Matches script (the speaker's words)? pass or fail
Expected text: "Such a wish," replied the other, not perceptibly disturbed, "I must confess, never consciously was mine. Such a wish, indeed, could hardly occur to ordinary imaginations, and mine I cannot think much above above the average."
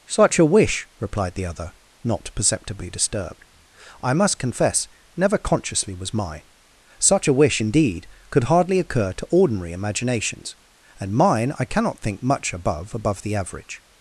pass